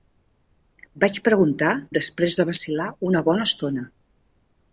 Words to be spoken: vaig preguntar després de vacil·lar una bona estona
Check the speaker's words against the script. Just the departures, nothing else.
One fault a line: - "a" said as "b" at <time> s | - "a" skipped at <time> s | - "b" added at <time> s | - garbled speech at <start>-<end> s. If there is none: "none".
none